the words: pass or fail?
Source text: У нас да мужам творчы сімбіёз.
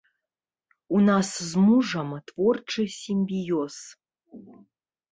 fail